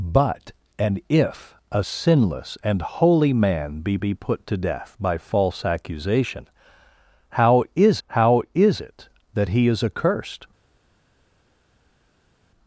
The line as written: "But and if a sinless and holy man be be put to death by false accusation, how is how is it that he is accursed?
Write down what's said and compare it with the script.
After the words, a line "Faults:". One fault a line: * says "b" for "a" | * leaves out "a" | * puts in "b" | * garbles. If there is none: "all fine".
"But and if a sinless and holy man be be put to death by false accusation, how is how is it that he is accursed?
Faults:
all fine